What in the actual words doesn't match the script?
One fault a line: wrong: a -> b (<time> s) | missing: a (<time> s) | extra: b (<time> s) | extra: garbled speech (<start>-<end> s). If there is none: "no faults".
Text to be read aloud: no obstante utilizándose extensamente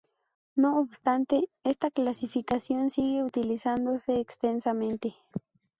extra: esta clasificación sigue (1.6 s)